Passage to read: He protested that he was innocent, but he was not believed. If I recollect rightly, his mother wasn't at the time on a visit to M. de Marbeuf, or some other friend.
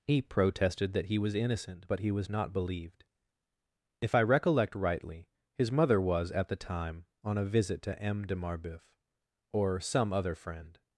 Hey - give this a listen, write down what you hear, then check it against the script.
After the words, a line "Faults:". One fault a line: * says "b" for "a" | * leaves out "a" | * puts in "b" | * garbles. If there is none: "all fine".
He protested that he was innocent, but he was not believed. If I recollect rightly, his mother was at the time on a visit to M. de Marbeuf, or some other friend.
Faults:
* says "was" for "wasn't"